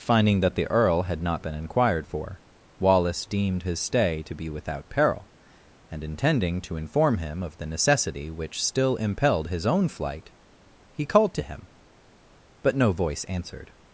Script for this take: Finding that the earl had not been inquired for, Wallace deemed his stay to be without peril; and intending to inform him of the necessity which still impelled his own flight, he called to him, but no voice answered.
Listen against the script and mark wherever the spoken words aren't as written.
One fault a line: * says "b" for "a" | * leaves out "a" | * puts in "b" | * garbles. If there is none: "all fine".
all fine